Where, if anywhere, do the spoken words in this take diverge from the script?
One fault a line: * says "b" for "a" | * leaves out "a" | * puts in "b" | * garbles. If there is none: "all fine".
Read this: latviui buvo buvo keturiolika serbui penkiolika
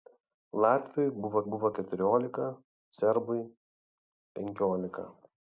all fine